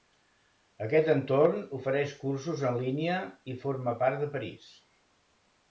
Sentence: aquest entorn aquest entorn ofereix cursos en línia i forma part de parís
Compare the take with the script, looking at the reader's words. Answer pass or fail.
fail